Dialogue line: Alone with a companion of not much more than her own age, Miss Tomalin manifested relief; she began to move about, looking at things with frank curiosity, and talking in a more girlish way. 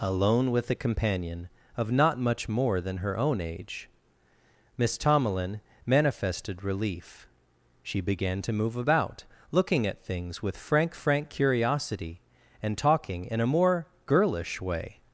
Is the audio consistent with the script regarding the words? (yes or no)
no